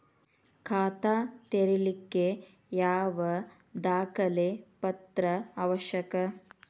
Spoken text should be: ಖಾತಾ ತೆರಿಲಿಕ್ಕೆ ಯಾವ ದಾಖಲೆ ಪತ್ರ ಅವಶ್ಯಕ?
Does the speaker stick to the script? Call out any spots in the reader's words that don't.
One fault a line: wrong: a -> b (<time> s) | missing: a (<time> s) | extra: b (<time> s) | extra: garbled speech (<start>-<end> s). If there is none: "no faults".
no faults